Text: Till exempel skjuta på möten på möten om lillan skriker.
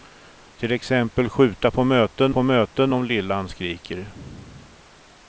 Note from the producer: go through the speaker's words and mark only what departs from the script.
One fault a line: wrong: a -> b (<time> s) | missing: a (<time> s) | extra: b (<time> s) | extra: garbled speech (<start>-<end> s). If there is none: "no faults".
no faults